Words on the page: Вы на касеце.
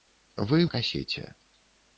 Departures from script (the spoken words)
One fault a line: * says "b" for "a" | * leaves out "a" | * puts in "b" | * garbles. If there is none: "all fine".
all fine